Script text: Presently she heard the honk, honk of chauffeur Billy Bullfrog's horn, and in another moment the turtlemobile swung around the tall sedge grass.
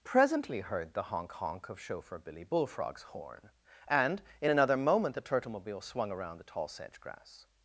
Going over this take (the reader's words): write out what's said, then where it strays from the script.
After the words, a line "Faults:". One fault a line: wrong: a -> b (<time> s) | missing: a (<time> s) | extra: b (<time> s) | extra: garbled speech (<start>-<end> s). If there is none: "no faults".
Presently heard the honk, honk of chauffeur Billy Bullfrog's horn, and in another moment the turtlemobile swung around the tall sedge grass.
Faults:
missing: she (0.6 s)